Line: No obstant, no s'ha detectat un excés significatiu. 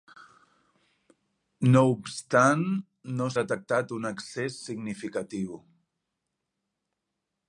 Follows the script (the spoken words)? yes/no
no